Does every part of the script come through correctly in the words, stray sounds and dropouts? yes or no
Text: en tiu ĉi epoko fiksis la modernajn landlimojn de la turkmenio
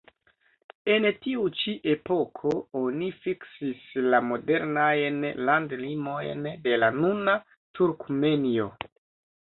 no